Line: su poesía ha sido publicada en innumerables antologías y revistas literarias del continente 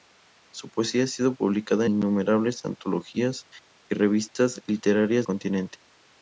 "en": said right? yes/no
no